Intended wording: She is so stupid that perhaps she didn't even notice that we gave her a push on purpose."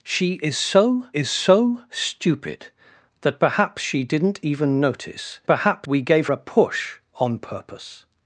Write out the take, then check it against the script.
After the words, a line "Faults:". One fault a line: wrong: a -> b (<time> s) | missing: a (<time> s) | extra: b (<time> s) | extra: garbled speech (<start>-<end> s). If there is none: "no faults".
She is so is so stupid that perhaps she didn't even notice perhaps we gave a push on purpose."
Faults:
extra: is so (1.2 s)
wrong: that -> perhaps (5.5 s)
missing: her (6.3 s)